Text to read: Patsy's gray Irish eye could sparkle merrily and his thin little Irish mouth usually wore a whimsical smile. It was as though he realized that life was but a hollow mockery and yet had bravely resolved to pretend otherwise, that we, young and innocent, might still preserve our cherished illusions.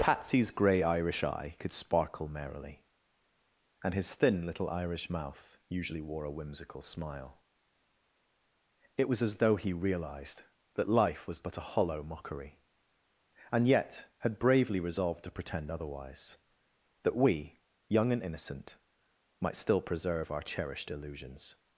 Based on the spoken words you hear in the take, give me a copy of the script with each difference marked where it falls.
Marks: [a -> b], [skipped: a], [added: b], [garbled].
Patsy's gray Irish eye could sparkle merrily and his thin little Irish mouth usually wore a whimsical smile. It was as though he realized that life was but a hollow mockery and yet had bravely resolved to pretend otherwise, that we, young and innocent, might still preserve our cherished illusions.